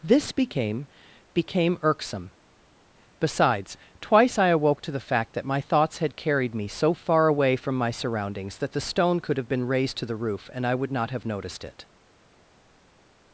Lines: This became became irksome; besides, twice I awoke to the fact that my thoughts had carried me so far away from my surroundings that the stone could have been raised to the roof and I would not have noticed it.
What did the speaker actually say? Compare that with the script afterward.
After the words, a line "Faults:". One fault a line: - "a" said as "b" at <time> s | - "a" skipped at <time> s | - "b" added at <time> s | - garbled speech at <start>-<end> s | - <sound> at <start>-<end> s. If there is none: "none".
This became became irksome; besides, twice I awoke to the fact that my thoughts had carried me so far away from my surroundings that the stone could have been raised to the roof and I would not have noticed it.
Faults:
none